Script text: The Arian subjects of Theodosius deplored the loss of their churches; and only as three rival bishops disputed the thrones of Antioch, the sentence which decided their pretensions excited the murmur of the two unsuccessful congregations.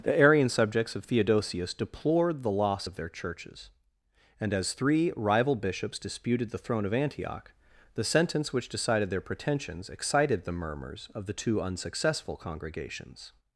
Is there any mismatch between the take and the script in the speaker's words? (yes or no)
yes